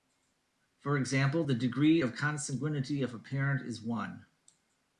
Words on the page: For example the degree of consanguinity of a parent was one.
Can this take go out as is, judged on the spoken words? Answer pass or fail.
fail